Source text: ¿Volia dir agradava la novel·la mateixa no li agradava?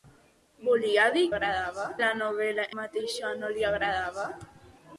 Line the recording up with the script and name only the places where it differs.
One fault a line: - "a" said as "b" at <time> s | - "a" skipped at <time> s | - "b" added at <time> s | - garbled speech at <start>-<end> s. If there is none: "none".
none